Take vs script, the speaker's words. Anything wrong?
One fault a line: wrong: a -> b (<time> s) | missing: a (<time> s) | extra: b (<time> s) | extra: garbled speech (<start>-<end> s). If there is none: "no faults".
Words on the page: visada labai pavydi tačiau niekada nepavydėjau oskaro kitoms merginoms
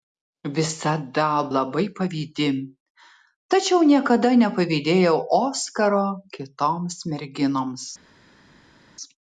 no faults